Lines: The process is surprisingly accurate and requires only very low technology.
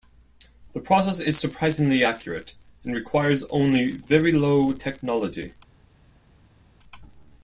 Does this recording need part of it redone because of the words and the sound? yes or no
no